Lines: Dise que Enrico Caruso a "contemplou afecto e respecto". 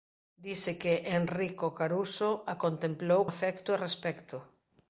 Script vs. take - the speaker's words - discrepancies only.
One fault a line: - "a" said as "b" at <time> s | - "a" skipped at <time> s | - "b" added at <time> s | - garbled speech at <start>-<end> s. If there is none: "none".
none